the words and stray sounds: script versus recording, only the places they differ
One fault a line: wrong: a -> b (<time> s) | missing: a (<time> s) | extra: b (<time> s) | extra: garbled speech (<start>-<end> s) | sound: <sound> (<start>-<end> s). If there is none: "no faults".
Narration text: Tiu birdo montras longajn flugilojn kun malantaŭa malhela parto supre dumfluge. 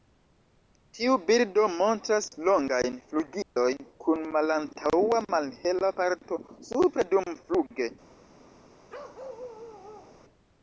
sound: dropout (3.4-3.6 s)
sound: bark (8.9-10.2 s)